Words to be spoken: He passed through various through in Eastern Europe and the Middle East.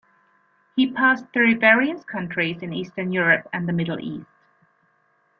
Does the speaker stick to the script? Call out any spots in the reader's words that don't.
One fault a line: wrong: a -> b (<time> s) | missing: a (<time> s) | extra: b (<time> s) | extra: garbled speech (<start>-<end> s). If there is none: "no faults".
wrong: through -> countries (2.0 s)